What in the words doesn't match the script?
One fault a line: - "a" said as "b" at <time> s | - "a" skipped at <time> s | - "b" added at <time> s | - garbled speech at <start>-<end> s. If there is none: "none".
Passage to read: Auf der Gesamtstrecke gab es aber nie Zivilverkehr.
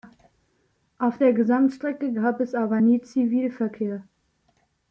none